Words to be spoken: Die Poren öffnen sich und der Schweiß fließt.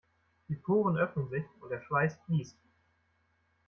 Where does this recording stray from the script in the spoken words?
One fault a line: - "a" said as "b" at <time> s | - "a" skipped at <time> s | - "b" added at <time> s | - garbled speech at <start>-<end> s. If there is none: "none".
none